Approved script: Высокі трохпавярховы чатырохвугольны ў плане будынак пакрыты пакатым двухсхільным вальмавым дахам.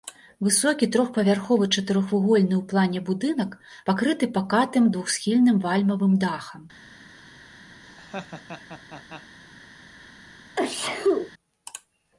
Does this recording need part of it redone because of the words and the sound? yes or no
yes